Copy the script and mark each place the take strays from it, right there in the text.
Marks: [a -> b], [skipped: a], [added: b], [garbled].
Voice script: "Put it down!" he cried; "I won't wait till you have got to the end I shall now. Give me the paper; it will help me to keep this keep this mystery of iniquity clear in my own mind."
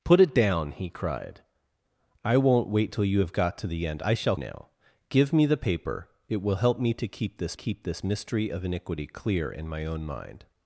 "Put it down!" he cried; "I won't wait till you have got to the end I shall now. Give me the paper; it will help me to keep this keep this mystery of iniquity clear in my own mind."